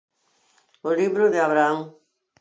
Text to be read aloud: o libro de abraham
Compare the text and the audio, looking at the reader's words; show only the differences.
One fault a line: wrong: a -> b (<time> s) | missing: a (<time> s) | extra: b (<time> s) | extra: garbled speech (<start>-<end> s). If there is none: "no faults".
no faults